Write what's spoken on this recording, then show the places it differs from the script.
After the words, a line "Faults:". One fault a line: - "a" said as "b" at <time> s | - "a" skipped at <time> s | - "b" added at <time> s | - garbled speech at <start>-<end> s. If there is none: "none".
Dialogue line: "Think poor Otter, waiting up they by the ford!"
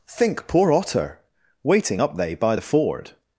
"Think poor Otter, waiting up they by the ford!"
Faults:
none